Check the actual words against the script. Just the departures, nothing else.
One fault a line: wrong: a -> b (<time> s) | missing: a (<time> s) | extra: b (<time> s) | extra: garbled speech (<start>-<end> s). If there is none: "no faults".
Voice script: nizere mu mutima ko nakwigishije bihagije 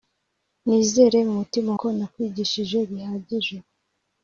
no faults